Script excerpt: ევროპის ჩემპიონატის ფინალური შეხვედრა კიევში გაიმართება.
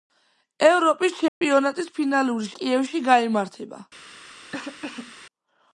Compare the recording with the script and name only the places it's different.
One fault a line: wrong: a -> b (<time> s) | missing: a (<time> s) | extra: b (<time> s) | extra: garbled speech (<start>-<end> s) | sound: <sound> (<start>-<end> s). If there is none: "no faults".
sound: dropout (1.3-1.4 s)
missing: შეხვედრა (2.5 s)
sound: cough (4.5-5.2 s)